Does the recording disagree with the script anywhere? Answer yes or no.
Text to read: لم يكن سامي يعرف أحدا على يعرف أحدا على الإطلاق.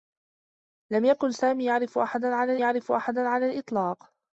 no